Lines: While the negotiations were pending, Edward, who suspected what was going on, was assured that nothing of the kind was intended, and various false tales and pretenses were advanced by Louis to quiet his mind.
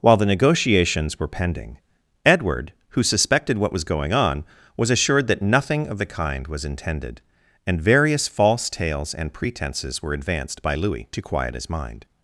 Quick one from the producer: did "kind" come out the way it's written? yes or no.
yes